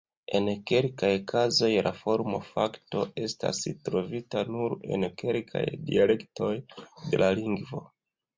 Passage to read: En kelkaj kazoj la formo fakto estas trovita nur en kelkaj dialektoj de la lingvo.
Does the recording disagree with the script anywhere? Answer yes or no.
no